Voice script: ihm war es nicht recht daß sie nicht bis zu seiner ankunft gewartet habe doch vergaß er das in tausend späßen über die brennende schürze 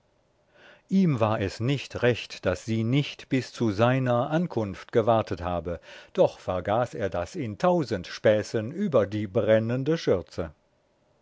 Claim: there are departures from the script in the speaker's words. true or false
false